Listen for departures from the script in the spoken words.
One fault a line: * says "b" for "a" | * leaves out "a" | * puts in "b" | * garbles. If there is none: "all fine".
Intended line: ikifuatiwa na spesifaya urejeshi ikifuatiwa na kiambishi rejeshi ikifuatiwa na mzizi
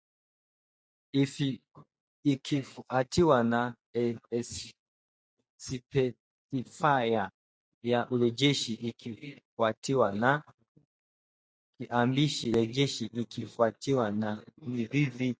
* puts in "ya"